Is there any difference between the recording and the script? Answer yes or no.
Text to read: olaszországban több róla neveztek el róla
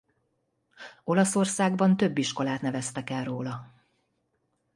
yes